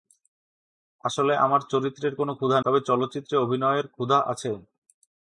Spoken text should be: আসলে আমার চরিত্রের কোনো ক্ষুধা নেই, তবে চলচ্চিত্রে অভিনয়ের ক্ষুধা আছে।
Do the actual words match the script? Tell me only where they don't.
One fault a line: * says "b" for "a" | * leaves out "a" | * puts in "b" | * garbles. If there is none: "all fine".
* leaves out "নেই"